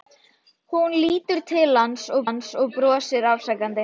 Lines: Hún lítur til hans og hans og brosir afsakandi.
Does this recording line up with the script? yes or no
yes